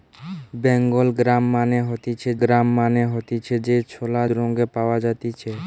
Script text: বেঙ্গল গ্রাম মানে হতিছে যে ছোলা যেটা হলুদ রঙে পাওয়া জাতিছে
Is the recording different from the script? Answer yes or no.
yes